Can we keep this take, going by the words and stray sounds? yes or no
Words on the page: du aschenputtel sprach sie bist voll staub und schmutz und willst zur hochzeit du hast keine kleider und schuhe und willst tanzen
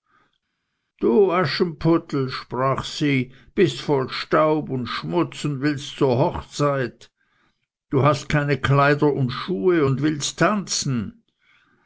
yes